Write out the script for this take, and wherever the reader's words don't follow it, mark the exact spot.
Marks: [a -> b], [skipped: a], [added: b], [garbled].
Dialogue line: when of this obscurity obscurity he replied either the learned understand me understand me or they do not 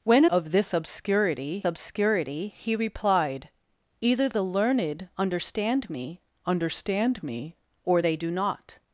when of this obscurity obscurity he replied either the learned understand me understand me or they do not